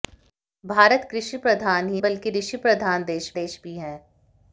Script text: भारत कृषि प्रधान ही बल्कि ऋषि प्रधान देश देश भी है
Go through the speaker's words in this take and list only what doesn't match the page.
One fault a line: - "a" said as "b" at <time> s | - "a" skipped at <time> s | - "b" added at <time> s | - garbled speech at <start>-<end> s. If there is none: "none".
none